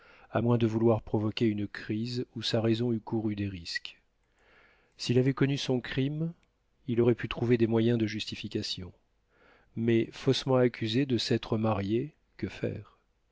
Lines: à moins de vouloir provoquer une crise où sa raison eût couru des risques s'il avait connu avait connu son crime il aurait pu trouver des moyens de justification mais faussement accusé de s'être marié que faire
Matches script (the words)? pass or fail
fail